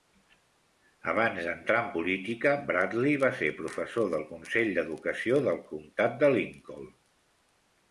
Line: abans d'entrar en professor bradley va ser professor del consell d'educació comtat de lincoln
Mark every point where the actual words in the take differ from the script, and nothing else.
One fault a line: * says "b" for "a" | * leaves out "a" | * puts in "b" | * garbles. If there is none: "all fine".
* says "política" for "professor"
* puts in "del"